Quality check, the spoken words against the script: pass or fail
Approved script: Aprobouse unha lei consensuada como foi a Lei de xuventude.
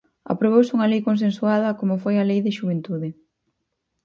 pass